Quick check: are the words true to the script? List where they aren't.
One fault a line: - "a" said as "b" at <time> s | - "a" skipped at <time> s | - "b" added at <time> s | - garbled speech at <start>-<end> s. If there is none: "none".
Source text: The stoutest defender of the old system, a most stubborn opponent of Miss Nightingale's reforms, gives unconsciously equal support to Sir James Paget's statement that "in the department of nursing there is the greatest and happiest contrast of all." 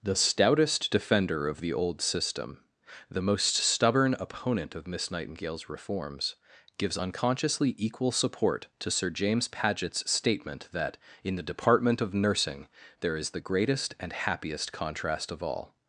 - "a" said as "the" at 3.1 s